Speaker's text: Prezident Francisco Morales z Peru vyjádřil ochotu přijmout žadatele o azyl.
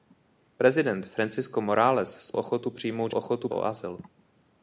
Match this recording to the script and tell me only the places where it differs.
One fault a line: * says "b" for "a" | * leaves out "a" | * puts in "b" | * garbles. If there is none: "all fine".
* leaves out "Peru vyjádřil"
* says "ochotu" for "žadatele"